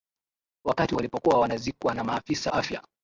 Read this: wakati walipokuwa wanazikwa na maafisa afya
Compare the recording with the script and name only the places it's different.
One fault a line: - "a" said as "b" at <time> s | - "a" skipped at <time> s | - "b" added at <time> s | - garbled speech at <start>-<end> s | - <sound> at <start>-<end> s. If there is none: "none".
none